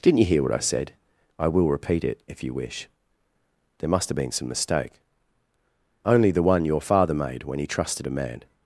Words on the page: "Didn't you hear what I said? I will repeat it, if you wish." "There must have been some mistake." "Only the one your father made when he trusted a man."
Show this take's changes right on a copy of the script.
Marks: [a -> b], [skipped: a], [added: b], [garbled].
"Didn't you hear what I said? I will repeat it, if you wish." "There must have been some mistake." "Only the one your father made when he trusted a man."